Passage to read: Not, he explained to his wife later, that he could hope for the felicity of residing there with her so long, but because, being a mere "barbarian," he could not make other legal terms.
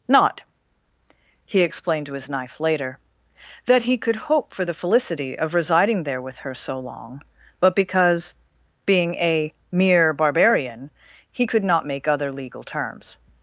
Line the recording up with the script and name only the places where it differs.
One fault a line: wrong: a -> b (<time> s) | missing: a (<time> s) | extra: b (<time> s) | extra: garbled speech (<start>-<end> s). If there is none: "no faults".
wrong: wife -> knife (2.3 s)